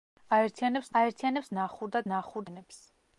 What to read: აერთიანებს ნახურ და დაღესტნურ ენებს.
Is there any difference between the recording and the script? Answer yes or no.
yes